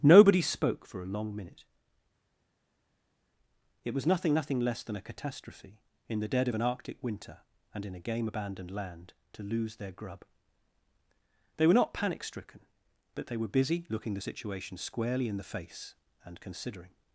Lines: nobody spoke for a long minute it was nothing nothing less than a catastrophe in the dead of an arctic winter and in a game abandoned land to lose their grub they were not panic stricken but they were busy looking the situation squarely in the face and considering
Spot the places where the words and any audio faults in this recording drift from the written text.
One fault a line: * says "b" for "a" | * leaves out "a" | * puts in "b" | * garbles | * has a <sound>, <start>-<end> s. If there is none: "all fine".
all fine